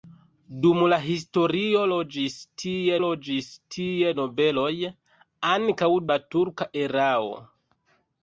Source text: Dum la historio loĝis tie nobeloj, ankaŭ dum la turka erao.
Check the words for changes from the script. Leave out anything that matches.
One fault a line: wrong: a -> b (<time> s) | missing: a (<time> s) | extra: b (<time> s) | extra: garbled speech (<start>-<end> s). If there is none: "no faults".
extra: loĝis tie (3.0 s)
missing: dum (5.9 s)